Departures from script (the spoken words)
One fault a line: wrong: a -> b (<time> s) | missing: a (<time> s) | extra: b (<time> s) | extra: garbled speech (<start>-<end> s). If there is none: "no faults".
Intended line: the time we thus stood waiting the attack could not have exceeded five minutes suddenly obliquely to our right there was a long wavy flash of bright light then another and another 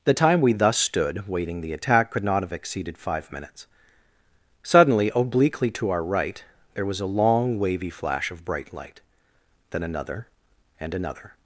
no faults